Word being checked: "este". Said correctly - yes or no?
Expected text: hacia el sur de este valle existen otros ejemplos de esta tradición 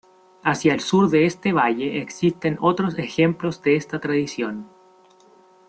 yes